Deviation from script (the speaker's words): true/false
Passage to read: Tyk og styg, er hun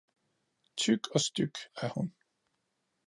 false